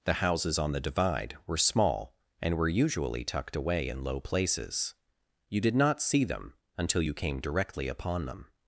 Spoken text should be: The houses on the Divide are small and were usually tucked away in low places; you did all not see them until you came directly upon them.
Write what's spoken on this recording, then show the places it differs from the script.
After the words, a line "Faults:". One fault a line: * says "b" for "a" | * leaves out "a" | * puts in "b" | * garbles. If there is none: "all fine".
The houses on the Divide were small and were usually tucked away in low places; you did not see them until you came directly upon them.
Faults:
* says "were" for "are"
* leaves out "all"